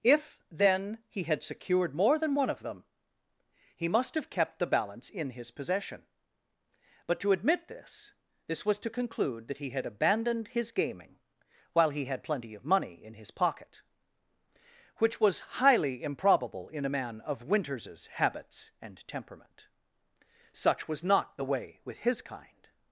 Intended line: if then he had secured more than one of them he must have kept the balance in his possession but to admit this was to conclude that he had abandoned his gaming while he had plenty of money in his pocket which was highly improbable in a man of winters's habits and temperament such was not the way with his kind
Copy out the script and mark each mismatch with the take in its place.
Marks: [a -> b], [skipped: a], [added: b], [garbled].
if then he had secured more than one of them he must have kept the balance in his possession but to admit this [added: this] was to conclude that he had abandoned his gaming while he had plenty of money in his pocket which was highly improbable in a man of winters's habits and temperament such was not the way with his kind